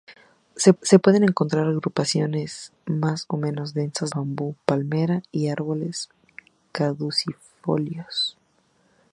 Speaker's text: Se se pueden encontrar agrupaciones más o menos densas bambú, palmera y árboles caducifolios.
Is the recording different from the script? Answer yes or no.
no